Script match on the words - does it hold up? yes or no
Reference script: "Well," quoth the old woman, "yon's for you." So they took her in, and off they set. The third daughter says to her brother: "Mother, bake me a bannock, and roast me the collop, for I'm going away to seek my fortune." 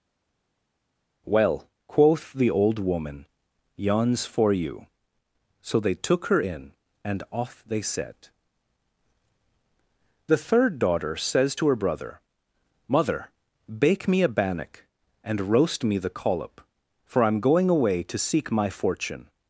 yes